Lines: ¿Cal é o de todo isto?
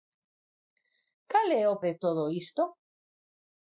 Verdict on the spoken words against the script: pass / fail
pass